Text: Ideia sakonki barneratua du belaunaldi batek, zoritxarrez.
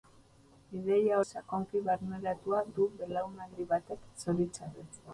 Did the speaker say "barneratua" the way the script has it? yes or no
yes